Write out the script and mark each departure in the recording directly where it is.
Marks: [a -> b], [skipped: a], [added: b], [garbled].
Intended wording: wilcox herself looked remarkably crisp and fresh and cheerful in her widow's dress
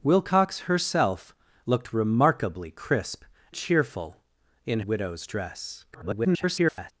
wilcox herself looked remarkably crisp [skipped: and fresh and] cheerful in [skipped: her] widow's dress [garbled]